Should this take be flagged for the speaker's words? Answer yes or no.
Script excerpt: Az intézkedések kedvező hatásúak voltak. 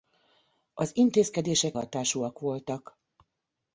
yes